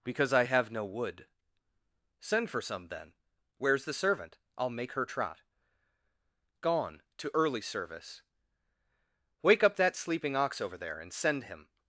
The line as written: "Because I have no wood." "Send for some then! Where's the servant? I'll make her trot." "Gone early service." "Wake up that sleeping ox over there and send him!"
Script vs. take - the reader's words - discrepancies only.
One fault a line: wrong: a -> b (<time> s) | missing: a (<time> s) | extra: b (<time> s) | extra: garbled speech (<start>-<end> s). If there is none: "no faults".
extra: to (7.2 s)